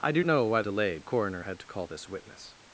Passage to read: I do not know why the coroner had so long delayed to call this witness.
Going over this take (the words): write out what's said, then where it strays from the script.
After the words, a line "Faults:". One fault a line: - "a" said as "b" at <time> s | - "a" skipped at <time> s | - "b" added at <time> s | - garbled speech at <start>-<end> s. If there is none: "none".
I do know why delayed coroner had to call this witness.
Faults:
- "not" skipped at 0.2 s
- "the" said as "delayed" at 0.6 s
- "so long delayed" skipped at 1.6 s